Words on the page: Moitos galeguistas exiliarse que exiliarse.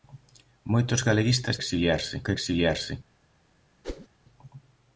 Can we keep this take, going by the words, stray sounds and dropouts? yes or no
no